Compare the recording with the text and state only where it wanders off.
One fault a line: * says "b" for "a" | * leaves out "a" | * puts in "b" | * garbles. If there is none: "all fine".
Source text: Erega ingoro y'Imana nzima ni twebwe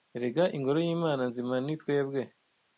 all fine